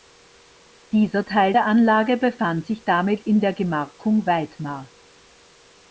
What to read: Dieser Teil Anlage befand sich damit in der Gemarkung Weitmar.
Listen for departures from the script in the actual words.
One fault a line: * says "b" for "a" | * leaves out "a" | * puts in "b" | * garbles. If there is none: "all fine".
* puts in "der"